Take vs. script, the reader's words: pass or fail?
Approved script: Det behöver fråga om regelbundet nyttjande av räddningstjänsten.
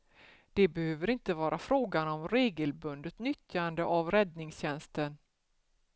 fail